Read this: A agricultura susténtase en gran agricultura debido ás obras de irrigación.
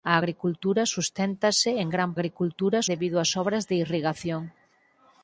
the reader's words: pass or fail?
pass